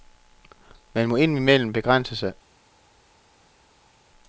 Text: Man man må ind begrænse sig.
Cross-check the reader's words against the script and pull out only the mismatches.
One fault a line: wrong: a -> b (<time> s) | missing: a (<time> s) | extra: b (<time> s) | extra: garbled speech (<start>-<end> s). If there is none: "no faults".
missing: man (1.1 s)
extra: imellem (1.4 s)